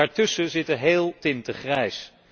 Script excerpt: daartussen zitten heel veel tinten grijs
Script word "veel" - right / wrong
wrong